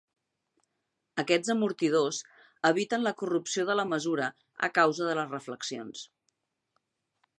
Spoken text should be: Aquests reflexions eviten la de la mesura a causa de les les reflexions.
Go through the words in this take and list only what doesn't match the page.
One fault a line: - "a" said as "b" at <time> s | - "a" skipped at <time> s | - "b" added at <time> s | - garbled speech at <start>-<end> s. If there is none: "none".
- "reflexions" said as "amortidors" at 1.5 s
- "corrupció" added at 3.2 s
- "les" skipped at 5.3 s